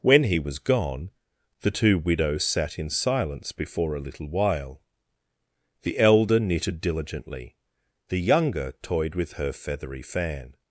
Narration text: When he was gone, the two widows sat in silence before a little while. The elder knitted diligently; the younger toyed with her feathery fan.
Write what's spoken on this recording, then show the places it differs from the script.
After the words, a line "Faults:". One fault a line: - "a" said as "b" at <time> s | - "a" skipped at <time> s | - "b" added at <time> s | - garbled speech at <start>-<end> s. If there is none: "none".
When he was gone, the two widows sat in silence before a little while. The elder knitted diligently; the younger toyed with her feathery fan.
Faults:
none